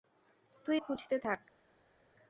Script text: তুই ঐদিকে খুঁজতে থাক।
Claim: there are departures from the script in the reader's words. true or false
true